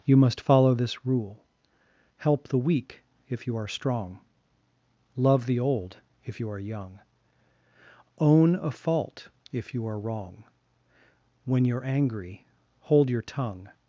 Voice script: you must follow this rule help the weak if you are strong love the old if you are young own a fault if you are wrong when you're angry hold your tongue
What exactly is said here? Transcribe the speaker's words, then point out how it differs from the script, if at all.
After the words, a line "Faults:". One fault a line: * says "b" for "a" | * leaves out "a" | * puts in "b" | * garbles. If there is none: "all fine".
you must follow this rule help the weak if you are strong love the old if you are young own a fault if you are wrong when you're angry hold your tongue
Faults:
all fine